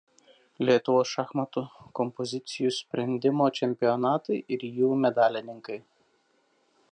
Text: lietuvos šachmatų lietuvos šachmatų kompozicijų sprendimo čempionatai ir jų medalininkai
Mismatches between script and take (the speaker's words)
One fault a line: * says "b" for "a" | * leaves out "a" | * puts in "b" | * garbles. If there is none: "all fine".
* leaves out "lietuvos šachmatų"